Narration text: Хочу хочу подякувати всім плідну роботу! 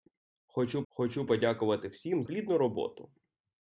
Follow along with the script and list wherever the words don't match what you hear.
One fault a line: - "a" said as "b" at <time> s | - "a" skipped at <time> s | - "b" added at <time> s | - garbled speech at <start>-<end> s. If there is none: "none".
none